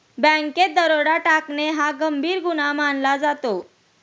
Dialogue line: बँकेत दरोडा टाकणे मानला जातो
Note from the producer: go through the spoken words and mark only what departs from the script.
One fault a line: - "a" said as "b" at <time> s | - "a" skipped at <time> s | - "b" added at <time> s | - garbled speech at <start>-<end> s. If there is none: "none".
- "हा गंभीर गुन्हा" added at 1.7 s